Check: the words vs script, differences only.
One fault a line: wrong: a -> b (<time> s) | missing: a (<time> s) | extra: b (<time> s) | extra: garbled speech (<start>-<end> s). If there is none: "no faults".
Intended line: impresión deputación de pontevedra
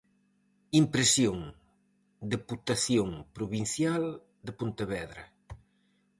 extra: provincial (3.4 s)